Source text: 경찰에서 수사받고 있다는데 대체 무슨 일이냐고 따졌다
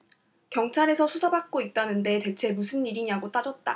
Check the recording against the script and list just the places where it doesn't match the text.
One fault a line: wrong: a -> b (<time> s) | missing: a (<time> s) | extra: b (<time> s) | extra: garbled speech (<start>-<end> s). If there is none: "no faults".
no faults